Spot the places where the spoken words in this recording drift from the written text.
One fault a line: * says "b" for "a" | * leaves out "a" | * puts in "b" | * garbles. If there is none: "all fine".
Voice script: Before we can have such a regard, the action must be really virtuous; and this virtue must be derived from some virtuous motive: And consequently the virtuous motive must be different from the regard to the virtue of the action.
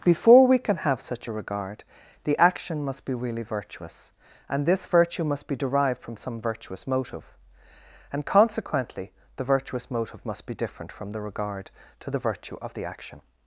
all fine